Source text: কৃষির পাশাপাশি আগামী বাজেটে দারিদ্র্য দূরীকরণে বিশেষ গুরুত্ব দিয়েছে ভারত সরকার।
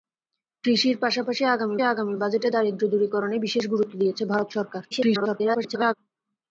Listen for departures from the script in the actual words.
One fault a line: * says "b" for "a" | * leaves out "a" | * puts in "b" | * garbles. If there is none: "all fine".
* puts in "আগামী"
* garbles